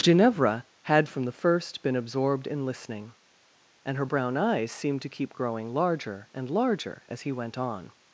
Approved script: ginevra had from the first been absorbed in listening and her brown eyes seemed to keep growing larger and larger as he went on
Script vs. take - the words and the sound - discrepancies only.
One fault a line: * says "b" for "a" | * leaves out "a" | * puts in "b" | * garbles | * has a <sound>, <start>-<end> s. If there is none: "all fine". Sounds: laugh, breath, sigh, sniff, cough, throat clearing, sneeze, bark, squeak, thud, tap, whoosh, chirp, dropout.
all fine